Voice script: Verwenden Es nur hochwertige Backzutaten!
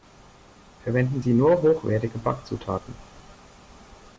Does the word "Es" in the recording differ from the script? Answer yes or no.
yes